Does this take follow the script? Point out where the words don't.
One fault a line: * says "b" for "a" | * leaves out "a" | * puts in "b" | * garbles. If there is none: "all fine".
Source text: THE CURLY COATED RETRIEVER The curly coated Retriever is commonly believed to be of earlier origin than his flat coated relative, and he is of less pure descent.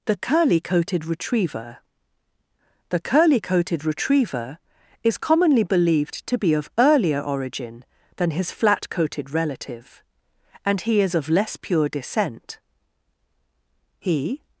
* puts in "He"